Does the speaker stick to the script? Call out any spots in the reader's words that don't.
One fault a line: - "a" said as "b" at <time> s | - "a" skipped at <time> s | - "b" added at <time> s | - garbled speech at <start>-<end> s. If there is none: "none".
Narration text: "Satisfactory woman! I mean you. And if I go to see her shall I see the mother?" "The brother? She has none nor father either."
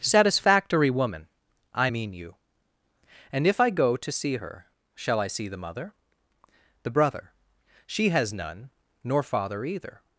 none